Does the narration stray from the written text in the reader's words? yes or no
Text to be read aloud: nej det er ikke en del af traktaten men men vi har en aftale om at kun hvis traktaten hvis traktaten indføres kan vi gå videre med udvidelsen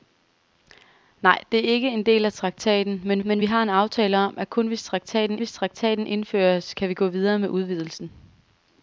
no